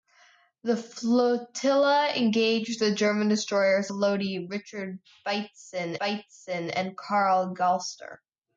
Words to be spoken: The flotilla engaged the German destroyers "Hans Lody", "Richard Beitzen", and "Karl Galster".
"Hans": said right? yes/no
no